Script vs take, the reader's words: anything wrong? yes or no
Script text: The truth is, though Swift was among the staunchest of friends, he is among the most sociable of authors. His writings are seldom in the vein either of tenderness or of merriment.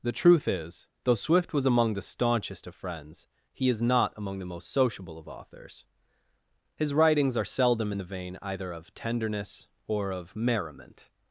yes